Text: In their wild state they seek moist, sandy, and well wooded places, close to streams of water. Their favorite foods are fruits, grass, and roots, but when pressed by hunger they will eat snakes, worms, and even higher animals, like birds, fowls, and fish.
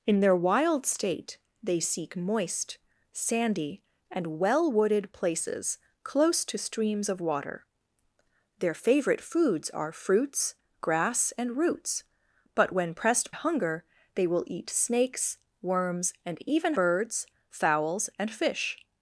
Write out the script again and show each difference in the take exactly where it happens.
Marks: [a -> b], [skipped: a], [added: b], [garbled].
In their wild state they seek moist, sandy, and well wooded places, close to streams of water. Their favorite foods are fruits, grass, and roots, but when pressed [skipped: by] hunger they will eat snakes, worms, and even [skipped: higher animals, like] birds, fowls, and fish.